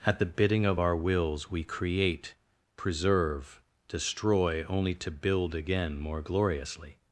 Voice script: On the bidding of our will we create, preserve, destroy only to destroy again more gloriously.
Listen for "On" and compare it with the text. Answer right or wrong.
wrong